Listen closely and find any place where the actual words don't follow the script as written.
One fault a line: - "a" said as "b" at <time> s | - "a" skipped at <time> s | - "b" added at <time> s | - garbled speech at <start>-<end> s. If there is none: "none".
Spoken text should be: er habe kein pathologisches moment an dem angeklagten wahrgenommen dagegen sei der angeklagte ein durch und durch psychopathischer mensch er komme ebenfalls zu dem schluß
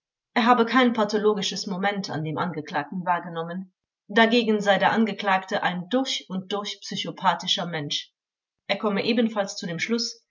none